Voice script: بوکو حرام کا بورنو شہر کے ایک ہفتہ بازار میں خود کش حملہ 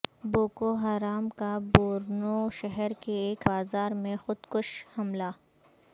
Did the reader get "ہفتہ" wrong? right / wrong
wrong